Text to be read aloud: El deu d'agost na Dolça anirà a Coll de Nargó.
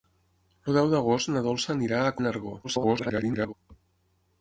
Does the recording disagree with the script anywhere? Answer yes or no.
yes